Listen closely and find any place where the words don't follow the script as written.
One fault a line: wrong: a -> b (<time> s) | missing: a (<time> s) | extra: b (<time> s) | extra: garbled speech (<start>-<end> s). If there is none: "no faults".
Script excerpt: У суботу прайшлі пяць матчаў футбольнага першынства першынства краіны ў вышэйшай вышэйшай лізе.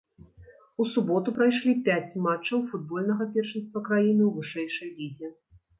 missing: першынства (3.8 s)
missing: вышэйшай (4.9 s)